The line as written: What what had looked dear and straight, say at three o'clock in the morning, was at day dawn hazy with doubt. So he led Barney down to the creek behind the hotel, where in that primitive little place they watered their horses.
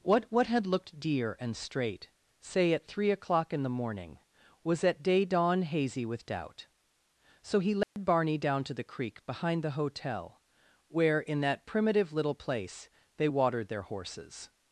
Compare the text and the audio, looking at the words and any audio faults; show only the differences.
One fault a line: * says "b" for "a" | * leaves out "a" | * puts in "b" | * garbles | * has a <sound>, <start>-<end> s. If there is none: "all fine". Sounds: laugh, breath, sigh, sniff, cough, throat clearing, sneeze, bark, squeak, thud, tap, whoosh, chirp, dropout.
* has a dropout, 7.8-8.0 s